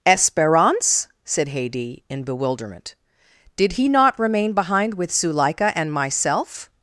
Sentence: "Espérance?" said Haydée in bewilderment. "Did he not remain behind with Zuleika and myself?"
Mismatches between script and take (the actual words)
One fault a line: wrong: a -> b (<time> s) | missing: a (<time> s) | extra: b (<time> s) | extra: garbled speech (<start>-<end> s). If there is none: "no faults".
no faults